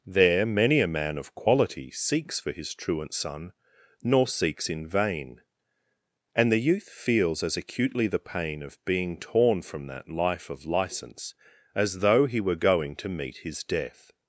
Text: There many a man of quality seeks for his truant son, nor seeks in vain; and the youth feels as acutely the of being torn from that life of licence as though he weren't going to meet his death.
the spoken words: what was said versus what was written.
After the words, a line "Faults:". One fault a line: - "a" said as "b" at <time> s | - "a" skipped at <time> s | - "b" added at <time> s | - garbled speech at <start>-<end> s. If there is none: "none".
There many a man of quality seeks for his truant son, nor seeks in vain; and the youth feels as acutely the pain of being torn from that life of licence as though he were going to meet his death.
Faults:
- "pain" added at 8.2 s
- "weren't" said as "were" at 12.4 s